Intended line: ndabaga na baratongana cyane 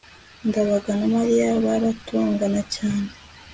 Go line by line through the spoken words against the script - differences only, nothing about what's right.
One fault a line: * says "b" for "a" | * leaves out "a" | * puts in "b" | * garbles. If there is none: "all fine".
* puts in "mariya"